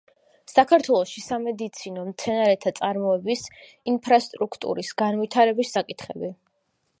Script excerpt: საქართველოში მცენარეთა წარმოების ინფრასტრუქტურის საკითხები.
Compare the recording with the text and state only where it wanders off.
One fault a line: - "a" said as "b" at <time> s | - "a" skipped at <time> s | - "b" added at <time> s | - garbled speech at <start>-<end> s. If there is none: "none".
- "სამედიცინო" added at 1.2 s
- "განვითარების" added at 5.0 s